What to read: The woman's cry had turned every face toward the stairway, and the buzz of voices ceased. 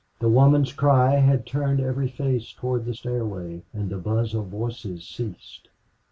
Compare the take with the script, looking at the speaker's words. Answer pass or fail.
pass